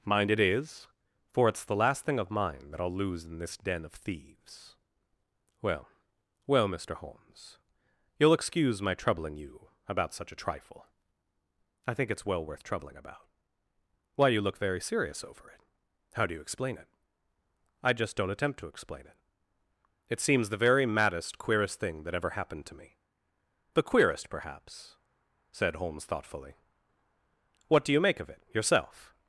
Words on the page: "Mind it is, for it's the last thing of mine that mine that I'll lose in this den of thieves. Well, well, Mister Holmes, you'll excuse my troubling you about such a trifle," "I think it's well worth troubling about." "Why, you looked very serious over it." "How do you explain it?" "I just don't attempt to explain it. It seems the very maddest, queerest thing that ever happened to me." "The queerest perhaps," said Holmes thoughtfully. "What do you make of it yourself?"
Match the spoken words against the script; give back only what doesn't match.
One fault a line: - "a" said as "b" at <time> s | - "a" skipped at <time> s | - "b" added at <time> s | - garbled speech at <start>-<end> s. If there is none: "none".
- "mine that" skipped at 2.8 s
- "looked" said as "look" at 14.4 s